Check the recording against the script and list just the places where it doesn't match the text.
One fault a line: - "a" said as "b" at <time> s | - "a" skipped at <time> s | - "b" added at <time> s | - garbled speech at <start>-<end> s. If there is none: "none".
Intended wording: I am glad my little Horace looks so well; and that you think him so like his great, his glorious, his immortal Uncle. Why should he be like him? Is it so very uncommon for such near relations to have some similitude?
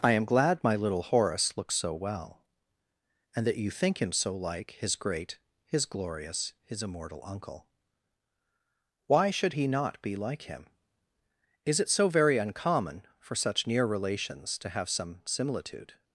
- "not" added at 9.7 s